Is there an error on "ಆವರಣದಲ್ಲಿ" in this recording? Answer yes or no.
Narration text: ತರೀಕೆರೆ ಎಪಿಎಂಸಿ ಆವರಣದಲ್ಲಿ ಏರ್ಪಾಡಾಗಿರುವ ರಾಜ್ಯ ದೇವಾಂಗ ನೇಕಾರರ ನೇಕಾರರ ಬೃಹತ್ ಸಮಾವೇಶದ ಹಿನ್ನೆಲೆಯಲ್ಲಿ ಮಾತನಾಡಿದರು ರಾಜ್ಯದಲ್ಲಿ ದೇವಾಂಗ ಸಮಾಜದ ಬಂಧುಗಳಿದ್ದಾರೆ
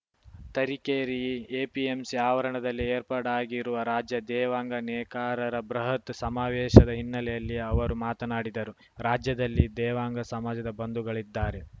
no